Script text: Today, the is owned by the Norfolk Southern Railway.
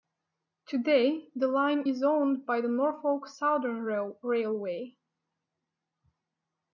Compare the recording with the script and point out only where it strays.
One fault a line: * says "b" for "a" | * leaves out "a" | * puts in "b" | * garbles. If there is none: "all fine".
* puts in "line"